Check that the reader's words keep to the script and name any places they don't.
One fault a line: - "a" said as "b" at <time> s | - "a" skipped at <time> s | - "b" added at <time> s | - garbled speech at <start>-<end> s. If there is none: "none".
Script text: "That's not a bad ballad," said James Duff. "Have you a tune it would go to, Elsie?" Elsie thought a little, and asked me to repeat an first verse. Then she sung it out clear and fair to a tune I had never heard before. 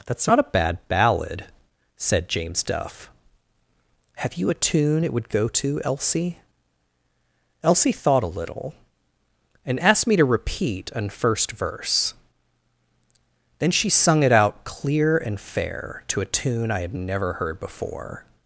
none